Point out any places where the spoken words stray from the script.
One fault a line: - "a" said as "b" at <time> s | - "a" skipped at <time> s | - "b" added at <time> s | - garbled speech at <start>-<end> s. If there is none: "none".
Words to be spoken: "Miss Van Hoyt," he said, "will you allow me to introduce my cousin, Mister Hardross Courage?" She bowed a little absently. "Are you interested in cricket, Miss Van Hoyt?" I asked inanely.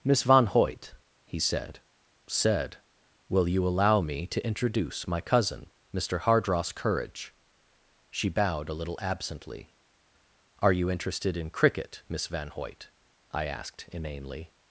- "said" added at 2.2 s